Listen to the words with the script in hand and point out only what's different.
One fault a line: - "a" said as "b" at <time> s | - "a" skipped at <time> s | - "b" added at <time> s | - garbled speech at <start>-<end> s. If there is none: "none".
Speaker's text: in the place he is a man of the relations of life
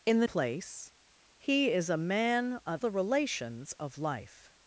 none